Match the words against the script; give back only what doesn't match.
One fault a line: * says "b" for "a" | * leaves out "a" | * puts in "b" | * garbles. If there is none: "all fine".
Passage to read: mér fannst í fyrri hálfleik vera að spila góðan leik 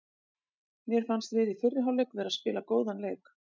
* puts in "við"